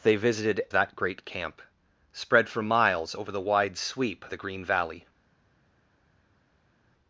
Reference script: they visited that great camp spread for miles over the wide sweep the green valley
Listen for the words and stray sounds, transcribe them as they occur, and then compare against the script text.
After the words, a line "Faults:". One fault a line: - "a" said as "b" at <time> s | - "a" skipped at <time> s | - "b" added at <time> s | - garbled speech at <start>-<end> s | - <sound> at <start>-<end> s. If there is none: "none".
they visited that great camp spread for miles over the wide sweep the green valley
Faults:
none